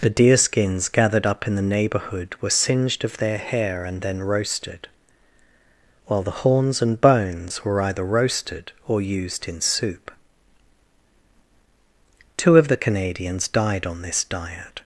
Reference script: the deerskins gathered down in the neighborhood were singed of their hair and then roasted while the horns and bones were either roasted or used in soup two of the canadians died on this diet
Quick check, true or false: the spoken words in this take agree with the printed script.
false